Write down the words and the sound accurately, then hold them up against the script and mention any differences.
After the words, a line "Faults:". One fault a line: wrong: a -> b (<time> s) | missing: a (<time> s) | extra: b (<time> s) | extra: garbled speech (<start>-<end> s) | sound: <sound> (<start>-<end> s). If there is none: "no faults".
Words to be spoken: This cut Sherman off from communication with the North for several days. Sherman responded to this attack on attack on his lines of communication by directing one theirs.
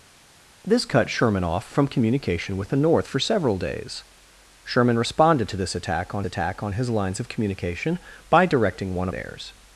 This cut Sherman off from communication with the North for several days. Sherman responded to this attack on attack on his lines of communication by directing one theirs.
Faults:
no faults